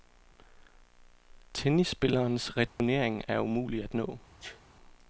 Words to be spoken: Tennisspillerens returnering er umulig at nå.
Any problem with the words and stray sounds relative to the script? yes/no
yes